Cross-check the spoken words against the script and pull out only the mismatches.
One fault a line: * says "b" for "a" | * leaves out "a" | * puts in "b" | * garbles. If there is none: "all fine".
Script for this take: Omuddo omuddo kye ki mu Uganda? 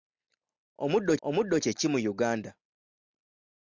all fine